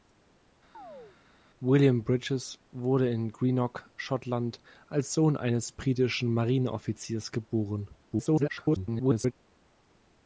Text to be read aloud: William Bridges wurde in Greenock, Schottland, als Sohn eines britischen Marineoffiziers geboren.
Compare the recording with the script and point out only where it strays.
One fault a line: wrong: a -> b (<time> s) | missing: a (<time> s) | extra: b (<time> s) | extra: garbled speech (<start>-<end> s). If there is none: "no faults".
extra: garbled speech (8.0-9.3 s)